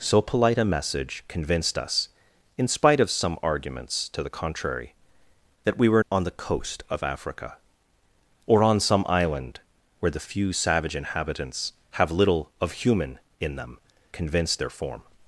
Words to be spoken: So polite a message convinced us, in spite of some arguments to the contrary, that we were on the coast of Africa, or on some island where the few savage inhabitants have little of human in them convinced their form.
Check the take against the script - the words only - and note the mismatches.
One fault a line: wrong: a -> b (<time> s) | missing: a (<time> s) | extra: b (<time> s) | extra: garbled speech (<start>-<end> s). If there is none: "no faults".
no faults